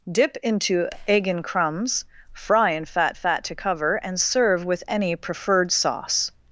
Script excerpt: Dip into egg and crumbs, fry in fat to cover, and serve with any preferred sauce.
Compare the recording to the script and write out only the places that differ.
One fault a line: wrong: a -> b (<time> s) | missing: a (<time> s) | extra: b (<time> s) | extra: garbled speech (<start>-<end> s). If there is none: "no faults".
extra: fat (3.1 s)